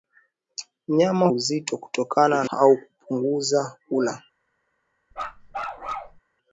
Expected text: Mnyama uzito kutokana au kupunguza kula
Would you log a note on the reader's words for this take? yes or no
no